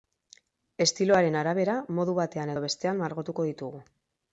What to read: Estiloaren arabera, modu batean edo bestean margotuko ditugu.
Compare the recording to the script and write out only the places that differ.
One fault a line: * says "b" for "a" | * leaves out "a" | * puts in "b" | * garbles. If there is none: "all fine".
all fine